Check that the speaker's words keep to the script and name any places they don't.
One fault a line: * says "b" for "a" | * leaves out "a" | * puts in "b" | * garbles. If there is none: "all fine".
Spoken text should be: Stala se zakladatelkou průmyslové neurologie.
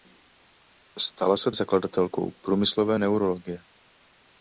all fine